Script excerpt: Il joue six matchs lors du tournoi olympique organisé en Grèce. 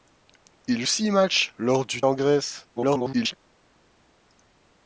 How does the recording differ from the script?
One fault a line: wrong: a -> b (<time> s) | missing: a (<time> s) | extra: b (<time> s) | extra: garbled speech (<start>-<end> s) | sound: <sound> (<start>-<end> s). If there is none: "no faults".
missing: joue (0.8 s)
missing: tournoi olympique organisé (2.0 s)
extra: garbled speech (2.8-3.3 s)